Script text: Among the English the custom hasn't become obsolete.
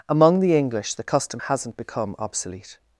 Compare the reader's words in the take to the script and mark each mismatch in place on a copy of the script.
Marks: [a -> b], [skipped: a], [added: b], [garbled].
Among the English the custom hasn't become obsolete.